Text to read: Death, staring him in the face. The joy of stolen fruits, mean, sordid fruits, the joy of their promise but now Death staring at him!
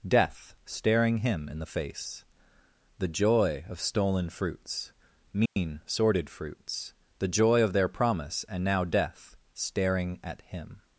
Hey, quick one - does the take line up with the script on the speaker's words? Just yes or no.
no